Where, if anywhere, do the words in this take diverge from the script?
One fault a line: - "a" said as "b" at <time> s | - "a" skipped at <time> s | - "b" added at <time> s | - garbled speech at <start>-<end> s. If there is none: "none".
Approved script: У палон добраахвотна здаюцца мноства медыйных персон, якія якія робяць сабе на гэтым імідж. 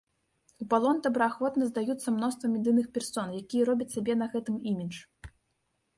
- "якія" skipped at 3.6 s